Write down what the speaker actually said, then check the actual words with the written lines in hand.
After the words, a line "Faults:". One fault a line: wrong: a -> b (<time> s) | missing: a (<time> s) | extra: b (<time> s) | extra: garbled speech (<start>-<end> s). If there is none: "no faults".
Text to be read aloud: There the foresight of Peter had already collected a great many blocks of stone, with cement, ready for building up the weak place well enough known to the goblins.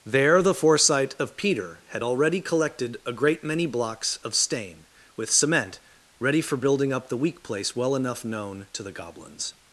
There the foresight of Peter had already collected a great many blocks of stain, with cement, ready for building up the weak place well enough known to the goblins.
Faults:
wrong: stone -> stain (4.3 s)